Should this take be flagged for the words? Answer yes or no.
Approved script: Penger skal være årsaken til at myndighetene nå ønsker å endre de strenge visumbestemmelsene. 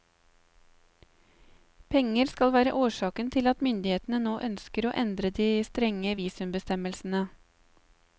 no